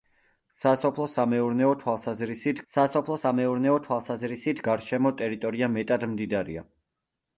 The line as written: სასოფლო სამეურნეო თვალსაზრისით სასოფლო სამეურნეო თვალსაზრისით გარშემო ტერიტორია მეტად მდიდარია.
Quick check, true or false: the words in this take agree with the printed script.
true